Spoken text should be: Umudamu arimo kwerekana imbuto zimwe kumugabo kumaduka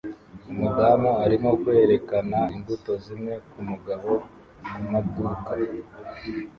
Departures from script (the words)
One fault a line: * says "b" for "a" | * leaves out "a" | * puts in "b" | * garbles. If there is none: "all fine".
all fine